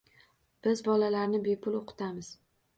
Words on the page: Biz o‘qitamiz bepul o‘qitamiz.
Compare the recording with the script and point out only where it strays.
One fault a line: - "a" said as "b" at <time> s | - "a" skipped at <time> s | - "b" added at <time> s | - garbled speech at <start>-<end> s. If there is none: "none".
- "o‘qitamiz" said as "bolalarni" at 0.8 s